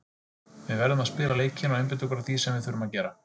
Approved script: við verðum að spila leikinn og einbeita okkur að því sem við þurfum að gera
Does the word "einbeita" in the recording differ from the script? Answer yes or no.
no